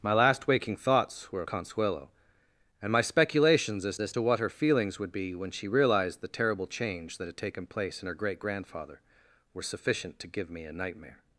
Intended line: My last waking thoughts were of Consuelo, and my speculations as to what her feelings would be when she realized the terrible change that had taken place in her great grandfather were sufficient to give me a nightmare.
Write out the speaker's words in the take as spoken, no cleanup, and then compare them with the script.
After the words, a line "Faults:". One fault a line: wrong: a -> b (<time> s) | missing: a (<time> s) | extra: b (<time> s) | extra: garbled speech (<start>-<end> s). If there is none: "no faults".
My last waking thoughts were Consuelo, and my speculations as as to what her feelings would be when she realized the terrible change that had taken place in her great grandfather were sufficient to give me a nightmare.
Faults:
missing: of (1.4 s)
extra: as (4.0 s)